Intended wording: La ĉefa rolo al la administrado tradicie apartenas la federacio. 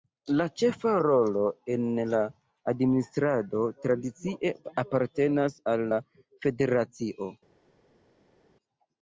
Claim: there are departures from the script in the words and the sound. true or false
true